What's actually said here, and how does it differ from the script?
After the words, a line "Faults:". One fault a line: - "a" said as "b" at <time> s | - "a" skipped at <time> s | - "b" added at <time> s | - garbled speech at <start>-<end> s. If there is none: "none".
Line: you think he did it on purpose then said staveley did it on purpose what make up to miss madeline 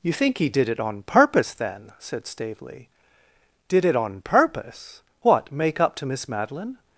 you think he did it on purpose then said staveley did it on purpose what make up to miss madeline
Faults:
none